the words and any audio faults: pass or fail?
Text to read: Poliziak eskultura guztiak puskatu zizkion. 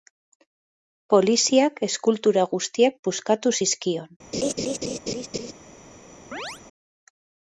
fail